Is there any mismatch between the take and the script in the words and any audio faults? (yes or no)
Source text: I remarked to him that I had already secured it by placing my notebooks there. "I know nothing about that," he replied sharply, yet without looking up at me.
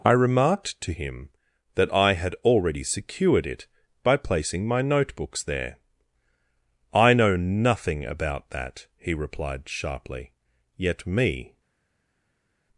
yes